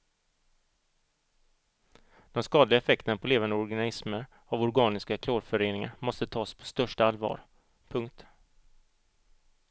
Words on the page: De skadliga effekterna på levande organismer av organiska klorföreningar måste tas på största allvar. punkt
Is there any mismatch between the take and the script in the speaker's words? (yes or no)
no